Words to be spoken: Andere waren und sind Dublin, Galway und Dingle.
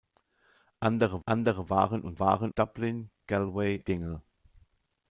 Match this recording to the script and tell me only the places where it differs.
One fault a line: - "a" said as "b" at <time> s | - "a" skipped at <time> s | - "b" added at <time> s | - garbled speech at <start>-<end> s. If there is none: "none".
- "andere" added at 1.2 s
- "sind" said as "waren" at 2.2 s
- "und" skipped at 3.8 s